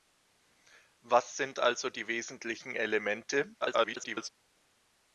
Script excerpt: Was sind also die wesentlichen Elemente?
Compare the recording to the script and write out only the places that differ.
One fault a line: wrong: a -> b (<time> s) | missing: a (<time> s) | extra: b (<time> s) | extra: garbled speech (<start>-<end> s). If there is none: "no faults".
extra: garbled speech (3.6-4.3 s)